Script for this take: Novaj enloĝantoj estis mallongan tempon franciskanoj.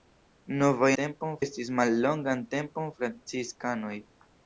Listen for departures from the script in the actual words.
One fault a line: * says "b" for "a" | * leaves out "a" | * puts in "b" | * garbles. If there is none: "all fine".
* says "tempon" for "enloĝantoj"